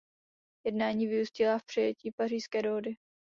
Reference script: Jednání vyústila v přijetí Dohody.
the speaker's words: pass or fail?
fail